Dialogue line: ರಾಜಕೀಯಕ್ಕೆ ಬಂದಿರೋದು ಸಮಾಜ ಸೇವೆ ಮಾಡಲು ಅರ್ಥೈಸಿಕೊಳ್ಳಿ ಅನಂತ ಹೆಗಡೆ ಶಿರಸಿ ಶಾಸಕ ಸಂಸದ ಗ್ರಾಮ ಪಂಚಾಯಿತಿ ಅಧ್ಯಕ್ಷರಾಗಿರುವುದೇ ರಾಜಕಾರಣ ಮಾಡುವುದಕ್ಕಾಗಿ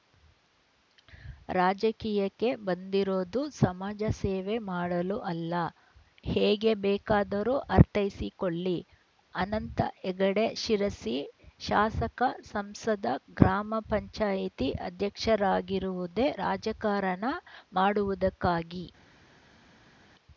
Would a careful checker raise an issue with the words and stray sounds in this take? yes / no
yes